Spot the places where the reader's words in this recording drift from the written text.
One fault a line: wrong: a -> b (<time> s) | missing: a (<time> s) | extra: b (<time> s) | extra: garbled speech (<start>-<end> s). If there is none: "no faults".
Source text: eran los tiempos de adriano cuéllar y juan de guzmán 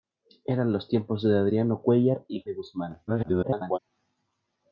missing: juan (2.4 s)
extra: garbled speech (3.1-3.8 s)